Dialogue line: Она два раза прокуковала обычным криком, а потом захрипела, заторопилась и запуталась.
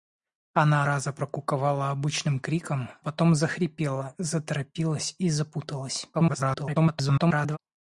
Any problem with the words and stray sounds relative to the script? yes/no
yes